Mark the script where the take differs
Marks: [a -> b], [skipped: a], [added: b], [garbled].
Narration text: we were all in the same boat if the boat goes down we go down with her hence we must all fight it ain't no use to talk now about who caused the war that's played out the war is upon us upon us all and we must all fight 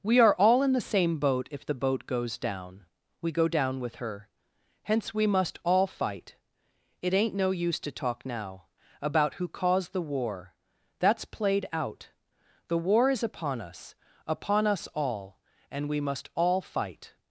we [were -> are] all in the same boat if the boat goes down we go down with her hence we must all fight it ain't no use to talk now about who caused the war that's played out the war is upon us upon us all and we must all fight